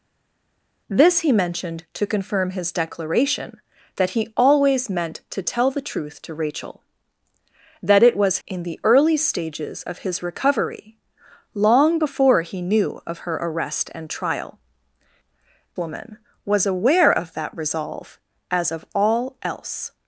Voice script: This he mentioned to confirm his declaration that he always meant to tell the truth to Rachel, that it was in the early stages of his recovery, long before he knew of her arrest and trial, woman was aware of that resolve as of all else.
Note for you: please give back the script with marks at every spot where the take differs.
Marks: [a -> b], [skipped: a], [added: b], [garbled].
This he mentioned to confirm his declaration that he always meant to tell the truth to Rachel, that it was in the early stages of his recovery, long before he knew of her arrest and trial, woman was aware of that resolve as of all else.